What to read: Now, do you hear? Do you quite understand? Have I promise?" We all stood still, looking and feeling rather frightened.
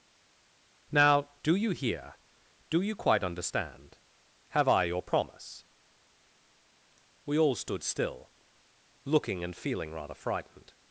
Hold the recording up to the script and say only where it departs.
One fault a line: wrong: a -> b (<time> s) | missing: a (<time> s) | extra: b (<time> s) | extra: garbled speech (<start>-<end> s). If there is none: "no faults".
extra: your (4.8 s)